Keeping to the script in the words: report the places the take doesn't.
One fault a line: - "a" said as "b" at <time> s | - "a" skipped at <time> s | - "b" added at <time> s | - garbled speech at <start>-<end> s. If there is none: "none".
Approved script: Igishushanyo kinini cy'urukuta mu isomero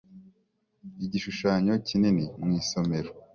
- "cy'urukuta" skipped at 2.2 s